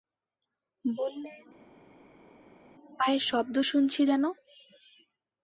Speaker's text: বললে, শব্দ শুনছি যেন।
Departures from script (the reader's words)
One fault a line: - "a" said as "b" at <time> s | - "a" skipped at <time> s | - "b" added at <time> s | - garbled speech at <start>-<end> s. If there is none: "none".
- "পায়ের" added at 3.0 s